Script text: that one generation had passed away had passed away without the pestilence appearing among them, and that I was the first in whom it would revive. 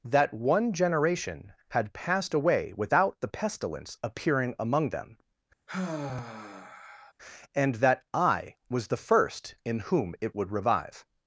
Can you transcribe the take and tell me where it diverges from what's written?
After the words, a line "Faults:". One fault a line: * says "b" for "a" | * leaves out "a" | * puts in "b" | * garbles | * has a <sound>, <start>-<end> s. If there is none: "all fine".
that one generation had passed away without the pestilence appearing among them, and that I was the first in whom it would revive.
Faults:
* leaves out "had passed away"
* has a sigh, 5.7-7.1 s